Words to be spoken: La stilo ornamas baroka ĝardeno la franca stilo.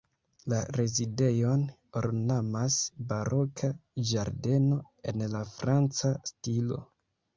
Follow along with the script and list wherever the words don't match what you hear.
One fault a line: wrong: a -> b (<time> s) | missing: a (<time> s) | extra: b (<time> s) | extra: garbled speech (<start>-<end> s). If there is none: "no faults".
wrong: stilo -> rezidejon (0.8 s)
extra: en (5.1 s)